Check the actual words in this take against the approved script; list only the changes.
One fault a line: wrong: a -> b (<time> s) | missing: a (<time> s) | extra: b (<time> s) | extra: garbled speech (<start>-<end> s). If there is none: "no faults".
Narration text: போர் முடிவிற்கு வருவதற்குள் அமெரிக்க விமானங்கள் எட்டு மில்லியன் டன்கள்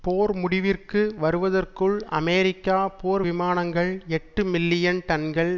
extra: போர் (3.0 s)